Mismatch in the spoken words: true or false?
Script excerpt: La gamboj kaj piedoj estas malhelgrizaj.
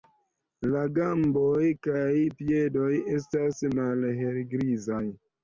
false